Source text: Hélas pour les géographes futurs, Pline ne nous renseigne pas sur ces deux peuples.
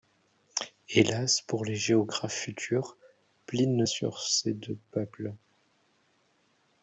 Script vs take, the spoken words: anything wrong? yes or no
yes